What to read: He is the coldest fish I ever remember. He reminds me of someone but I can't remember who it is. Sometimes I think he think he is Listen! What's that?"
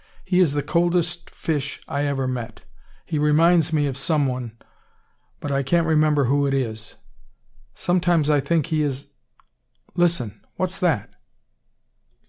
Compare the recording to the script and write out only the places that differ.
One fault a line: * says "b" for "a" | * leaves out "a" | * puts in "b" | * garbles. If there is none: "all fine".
* says "met" for "remember"
* leaves out "think he"